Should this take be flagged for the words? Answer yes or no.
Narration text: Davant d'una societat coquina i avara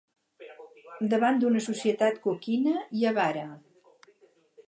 no